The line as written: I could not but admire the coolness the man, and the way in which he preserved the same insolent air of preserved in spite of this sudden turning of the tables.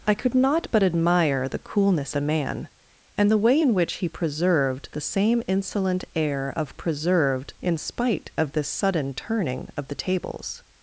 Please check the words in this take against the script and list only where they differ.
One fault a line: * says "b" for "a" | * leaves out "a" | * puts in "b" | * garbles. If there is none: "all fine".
all fine